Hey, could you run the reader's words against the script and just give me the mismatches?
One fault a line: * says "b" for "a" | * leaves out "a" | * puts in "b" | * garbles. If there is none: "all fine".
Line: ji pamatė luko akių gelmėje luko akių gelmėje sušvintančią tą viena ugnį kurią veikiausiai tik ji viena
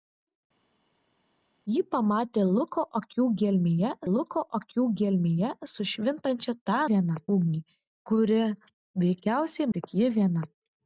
all fine